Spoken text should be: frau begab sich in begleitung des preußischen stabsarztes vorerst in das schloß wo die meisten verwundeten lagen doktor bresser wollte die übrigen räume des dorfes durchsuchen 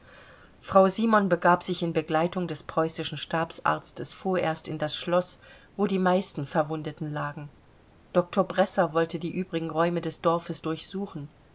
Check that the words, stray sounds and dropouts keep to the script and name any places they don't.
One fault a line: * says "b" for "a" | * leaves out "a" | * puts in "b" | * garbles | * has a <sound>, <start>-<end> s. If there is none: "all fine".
* puts in "simon"